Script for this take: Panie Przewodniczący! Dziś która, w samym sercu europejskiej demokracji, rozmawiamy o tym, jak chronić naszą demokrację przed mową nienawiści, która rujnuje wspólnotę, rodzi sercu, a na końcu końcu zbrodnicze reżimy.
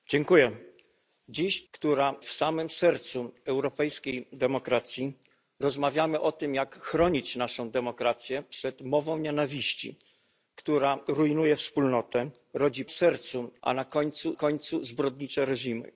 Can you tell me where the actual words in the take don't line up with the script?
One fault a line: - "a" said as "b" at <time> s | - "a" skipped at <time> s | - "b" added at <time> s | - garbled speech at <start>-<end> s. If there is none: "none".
none